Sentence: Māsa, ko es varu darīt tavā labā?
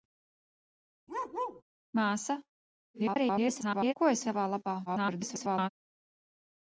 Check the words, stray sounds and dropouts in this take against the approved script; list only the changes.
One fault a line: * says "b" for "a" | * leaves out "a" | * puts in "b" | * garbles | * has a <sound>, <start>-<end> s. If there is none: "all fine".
* has a bark, 1.1-1.6 s
* garbles
* leaves out "varu darīt"
* garbles